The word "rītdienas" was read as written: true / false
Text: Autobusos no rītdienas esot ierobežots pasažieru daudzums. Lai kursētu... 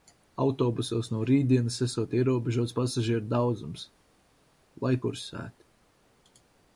true